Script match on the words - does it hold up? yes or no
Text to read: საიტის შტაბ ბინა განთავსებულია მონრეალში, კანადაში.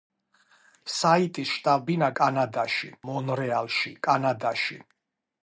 no